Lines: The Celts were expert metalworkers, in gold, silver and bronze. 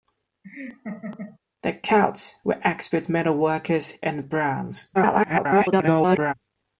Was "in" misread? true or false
true